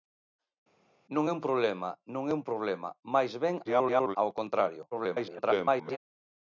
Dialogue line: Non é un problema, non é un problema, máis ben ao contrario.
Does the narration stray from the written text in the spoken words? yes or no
yes